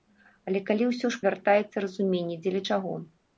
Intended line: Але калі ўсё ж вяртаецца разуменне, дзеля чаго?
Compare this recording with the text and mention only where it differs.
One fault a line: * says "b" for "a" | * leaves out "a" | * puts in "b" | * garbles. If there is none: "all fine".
all fine